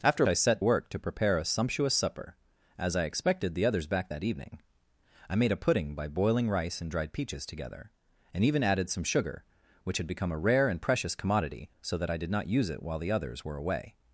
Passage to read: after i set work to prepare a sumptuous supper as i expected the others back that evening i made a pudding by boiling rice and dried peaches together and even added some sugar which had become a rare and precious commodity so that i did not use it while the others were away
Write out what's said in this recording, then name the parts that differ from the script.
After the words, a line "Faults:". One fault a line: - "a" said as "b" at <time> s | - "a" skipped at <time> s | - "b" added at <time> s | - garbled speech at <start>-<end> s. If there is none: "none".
after i set work to prepare a sumptuous supper as i expected the others back that evening i made a pudding by boiling rice and dried peaches together and even added some sugar which had become a rare and precious commodity so that i did not use it while the others were away
Faults:
none